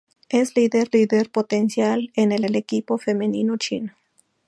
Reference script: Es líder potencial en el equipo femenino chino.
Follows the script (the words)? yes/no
no